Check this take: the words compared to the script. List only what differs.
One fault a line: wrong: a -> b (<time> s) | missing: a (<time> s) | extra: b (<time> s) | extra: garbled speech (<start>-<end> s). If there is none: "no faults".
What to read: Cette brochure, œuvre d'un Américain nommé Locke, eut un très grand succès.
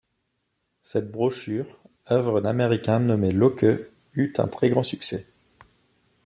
missing: d'un (2.4 s)